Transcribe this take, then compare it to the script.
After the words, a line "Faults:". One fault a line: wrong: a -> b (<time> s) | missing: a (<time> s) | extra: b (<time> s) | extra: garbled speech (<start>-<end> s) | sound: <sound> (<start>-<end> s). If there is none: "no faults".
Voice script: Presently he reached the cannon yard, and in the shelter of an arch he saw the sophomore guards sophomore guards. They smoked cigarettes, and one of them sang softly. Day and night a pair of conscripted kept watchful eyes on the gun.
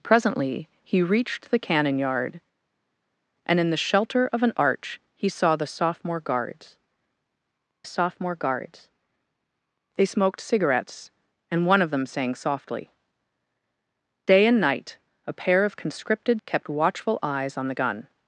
Presently he reached the cannon yard, and in the shelter of an arch he saw the sophomore guards sophomore guards. They smoked cigarettes, and one of them sang softly. Day and night a pair of conscripted kept watchful eyes on the gun.
Faults:
no faults